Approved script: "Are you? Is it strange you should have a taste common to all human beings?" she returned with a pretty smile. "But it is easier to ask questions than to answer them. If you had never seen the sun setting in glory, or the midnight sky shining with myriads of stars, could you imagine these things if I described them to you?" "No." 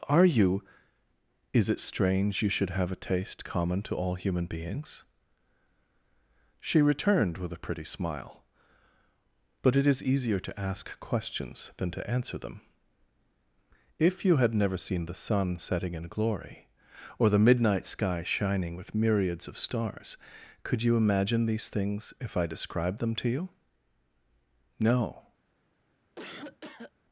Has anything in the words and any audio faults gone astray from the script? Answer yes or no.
yes